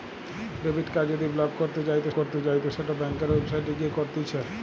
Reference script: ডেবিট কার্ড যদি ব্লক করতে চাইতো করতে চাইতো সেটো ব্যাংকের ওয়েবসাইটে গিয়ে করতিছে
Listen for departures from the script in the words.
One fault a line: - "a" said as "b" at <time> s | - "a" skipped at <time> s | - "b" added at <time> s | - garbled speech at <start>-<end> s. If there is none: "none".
none